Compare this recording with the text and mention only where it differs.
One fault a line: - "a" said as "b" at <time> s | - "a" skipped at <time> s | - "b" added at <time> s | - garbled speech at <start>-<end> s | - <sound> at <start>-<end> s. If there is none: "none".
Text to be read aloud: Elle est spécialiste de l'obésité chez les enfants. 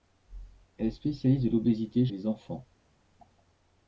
- "chez" skipped at 2.1 s